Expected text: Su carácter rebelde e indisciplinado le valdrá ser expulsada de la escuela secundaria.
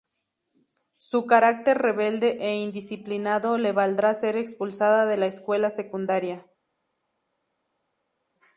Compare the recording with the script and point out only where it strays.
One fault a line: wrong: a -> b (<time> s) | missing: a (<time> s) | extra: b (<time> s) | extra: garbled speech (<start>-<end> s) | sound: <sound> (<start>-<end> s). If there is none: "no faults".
no faults